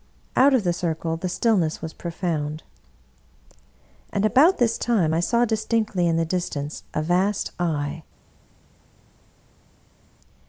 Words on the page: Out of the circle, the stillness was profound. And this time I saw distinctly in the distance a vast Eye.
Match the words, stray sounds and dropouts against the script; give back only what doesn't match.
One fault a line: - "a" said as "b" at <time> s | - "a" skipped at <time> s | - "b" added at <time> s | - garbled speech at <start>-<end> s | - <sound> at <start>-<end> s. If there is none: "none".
- "about" added at 4.2 s